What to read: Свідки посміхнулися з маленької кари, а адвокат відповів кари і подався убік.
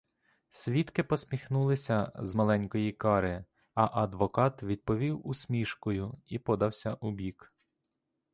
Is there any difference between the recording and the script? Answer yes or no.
yes